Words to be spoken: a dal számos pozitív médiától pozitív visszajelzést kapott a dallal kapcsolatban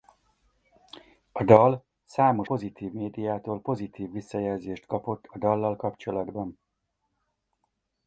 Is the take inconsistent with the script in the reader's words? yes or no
no